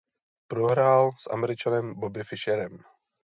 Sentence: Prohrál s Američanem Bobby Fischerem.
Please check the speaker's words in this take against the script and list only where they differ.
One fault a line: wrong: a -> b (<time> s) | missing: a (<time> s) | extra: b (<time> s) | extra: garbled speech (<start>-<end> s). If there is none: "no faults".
no faults